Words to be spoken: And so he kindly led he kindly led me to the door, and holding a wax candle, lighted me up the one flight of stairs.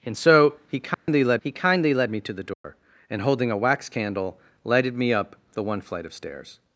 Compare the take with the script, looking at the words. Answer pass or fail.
pass